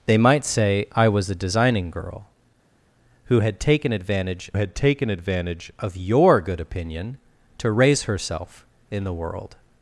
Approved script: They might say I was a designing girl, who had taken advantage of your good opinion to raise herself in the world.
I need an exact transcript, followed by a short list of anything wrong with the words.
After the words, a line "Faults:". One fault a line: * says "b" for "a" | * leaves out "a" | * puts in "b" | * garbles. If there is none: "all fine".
They might say I was a designing girl, who had taken advantage had taken advantage of your good opinion to raise herself in the world.
Faults:
* puts in "had taken advantage"